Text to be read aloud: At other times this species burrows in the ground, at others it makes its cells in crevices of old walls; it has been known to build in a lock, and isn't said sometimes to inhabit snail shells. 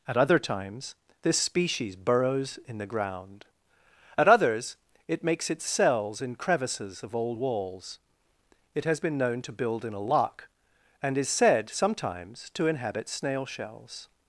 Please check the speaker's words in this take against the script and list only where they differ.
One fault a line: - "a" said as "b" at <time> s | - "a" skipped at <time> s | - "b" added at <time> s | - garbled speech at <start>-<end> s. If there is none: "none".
- "isn't" said as "is" at 11.2 s